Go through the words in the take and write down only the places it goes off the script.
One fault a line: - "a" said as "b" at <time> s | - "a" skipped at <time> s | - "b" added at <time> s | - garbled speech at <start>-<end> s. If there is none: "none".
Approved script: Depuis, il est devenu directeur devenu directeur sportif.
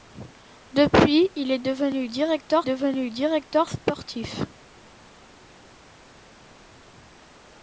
none